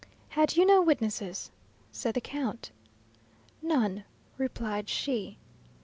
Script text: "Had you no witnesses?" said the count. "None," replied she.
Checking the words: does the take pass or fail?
pass